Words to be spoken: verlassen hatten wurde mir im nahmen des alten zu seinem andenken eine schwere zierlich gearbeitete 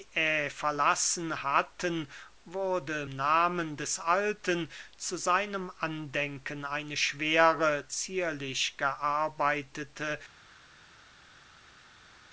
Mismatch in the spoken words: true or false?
true